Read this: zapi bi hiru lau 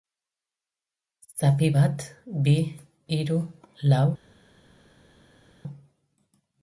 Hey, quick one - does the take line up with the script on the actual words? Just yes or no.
no